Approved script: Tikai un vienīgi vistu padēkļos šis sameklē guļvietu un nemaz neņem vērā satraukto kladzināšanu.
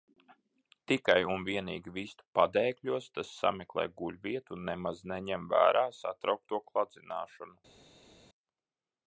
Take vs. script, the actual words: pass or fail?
fail